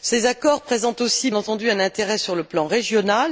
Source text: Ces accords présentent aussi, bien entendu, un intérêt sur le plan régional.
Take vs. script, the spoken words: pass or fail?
fail